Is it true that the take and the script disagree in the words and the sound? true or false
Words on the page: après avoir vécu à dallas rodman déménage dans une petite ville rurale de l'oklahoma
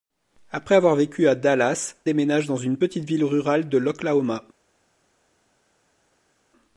true